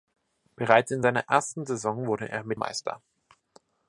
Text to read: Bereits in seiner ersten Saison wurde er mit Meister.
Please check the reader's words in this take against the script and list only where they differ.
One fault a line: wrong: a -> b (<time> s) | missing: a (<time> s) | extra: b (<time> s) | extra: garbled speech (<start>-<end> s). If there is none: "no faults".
no faults